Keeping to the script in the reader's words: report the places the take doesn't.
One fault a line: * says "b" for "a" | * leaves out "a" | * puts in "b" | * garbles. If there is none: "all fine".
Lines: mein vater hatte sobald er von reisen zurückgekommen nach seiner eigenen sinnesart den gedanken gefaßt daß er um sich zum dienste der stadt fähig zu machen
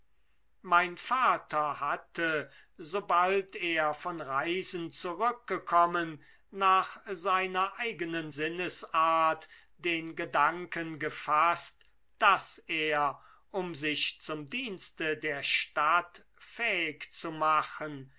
all fine